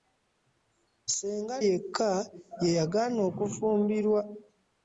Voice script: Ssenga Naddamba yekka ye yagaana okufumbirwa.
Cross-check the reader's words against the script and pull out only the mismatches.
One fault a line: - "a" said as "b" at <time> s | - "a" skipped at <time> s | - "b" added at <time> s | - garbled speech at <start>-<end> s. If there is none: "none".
- "Naddamba" skipped at 1.6 s